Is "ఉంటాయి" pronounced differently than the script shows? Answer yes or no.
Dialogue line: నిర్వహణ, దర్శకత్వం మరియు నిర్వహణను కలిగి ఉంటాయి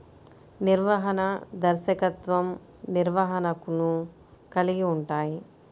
no